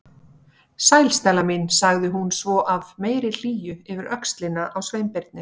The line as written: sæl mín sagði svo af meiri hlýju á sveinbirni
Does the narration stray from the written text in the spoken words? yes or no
yes